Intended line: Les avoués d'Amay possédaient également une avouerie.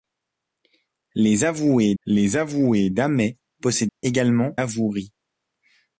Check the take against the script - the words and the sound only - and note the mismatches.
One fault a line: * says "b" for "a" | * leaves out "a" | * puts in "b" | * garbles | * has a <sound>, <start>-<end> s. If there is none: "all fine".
* puts in "les avoués"
* has a dropout, 3.9-4.0 s
* leaves out "une"